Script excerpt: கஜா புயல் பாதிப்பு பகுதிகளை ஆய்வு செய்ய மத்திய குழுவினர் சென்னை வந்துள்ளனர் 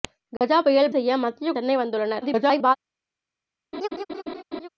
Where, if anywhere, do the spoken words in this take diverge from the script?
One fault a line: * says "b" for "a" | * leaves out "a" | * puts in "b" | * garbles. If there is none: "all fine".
* leaves out "பாதிப்பு பகுதிகளை ஆய்வு"
* leaves out "குழுவினர்"
* garbles